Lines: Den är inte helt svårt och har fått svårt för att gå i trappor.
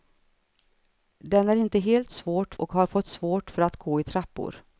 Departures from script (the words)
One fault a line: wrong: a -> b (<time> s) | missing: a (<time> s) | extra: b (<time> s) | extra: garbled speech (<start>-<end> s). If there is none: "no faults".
no faults